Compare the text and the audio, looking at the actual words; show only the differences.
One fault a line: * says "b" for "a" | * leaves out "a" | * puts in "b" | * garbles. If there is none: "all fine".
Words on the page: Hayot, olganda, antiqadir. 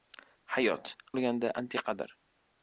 all fine